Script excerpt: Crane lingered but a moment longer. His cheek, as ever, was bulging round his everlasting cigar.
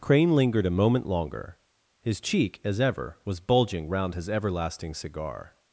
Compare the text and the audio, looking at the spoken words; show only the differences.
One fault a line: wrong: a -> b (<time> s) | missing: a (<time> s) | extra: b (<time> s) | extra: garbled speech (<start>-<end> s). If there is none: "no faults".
missing: but (0.7 s)